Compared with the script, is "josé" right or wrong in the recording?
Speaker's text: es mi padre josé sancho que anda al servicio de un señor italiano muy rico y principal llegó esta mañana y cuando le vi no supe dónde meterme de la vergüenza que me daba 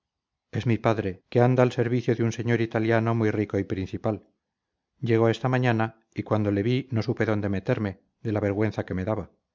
wrong